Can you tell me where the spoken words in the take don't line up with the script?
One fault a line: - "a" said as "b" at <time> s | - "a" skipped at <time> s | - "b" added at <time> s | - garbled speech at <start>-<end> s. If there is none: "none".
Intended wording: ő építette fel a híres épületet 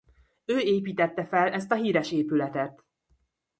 - "ezt" added at 1.5 s